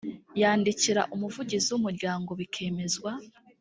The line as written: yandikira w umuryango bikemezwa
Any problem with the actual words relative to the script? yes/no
yes